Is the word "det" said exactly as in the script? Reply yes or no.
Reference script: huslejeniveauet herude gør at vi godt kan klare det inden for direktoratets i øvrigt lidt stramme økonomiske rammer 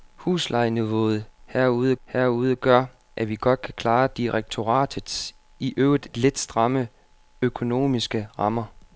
no